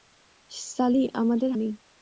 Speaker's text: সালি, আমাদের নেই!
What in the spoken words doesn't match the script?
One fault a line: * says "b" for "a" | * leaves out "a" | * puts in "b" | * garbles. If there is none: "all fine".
all fine